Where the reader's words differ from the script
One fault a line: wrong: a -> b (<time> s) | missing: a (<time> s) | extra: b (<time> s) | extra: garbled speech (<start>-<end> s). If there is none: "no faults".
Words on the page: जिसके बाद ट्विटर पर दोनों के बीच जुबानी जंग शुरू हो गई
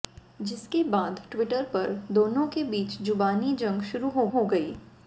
extra: हो (4.3 s)